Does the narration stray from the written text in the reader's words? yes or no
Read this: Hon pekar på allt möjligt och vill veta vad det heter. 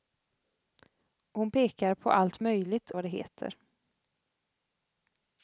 yes